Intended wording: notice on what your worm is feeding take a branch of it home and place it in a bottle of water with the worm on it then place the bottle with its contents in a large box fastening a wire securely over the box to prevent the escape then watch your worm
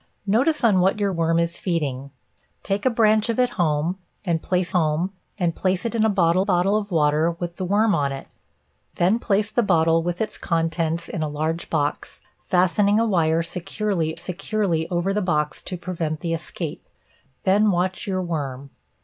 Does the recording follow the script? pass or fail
fail